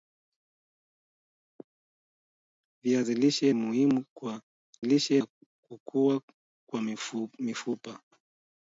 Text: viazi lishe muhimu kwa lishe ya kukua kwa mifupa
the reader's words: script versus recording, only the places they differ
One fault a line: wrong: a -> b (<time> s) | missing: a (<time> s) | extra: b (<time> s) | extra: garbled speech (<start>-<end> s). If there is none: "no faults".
no faults